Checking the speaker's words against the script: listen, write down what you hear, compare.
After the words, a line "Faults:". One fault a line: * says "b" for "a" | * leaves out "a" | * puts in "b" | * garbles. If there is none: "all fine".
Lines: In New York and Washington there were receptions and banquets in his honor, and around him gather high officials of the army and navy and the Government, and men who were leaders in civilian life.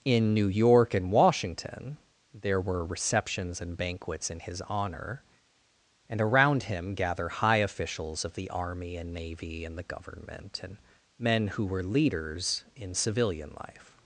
In New York and Washington there were receptions and banquets in his honor, and around him gather high officials of the army and navy and the Government, and men who were leaders in civilian life.
Faults:
all fine